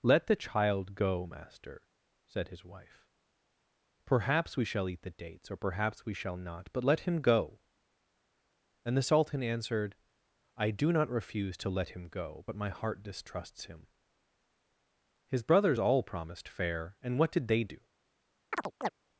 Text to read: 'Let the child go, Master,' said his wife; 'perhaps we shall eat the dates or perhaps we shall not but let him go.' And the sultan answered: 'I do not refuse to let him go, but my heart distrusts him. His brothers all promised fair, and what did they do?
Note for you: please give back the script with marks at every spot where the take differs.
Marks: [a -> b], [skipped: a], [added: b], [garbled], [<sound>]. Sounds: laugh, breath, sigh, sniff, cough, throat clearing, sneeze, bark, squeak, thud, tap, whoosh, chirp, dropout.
'Let the child go, Master,' said his wife; 'perhaps we shall eat the dates or perhaps we shall not but let him go.' And the sultan answered: 'I do not refuse to let him go, but my heart distrusts him. His brothers all promised fair, and what did they do? [chirp]